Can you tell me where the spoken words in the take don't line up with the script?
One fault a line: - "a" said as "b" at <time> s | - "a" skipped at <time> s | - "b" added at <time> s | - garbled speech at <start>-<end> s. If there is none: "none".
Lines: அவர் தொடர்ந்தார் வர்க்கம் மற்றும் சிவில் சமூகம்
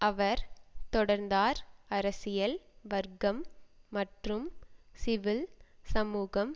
- "அரசியல்" added at 1.9 s